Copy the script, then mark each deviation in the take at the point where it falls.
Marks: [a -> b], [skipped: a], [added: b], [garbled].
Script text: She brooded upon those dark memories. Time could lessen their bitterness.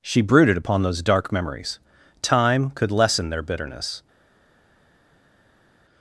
She brooded upon those dark memories. Time could lessen their bitterness.